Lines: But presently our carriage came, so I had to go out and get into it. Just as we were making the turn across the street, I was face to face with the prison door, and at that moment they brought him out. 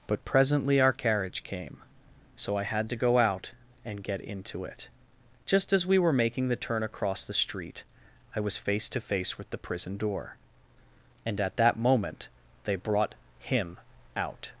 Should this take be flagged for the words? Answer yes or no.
no